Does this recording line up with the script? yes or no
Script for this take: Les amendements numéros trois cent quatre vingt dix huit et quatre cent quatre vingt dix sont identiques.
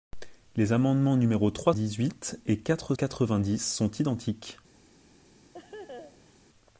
no